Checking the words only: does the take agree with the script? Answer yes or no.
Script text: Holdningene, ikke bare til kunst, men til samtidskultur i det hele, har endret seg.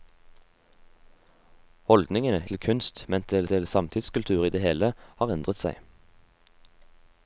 no